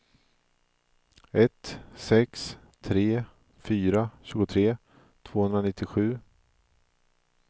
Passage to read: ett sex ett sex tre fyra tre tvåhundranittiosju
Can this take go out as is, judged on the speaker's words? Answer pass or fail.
fail